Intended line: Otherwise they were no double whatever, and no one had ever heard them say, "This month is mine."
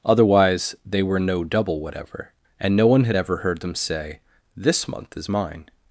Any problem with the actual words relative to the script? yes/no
no